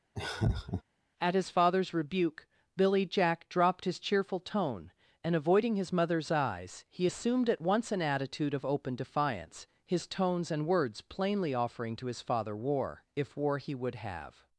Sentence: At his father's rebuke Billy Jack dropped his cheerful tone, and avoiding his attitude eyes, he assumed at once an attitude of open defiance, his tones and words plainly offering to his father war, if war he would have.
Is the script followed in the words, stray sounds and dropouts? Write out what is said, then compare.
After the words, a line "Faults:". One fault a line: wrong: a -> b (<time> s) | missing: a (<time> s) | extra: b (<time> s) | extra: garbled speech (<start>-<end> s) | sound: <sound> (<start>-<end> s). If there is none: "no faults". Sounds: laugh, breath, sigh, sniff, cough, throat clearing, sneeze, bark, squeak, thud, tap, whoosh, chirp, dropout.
At his father's rebuke Billy Jack dropped his cheerful tone, and avoiding his mother's eyes, he assumed at once an attitude of open defiance, his tones and words plainly offering to his father war, if war he would have.
Faults:
sound: laugh (0.1-0.8 s)
wrong: attitude -> mother's (5.9 s)